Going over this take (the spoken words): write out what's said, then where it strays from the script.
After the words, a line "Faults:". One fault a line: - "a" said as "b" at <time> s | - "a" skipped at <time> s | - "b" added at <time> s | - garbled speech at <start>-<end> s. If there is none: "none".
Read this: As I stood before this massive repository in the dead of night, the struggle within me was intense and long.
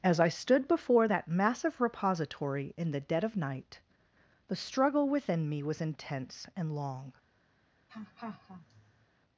As I stood before that massive repository in the dead of night, the struggle within me was intense and long.
Faults:
- "this" said as "that" at 1.1 s